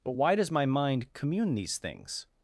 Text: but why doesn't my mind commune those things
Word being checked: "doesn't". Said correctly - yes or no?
no